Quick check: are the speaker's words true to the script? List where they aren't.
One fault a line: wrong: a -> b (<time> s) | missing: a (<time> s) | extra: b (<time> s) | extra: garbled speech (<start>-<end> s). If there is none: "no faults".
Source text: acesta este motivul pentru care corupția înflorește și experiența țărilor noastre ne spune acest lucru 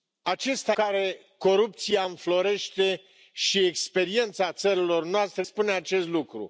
missing: este motivul pentru (0.8 s)
missing: ne (5.4 s)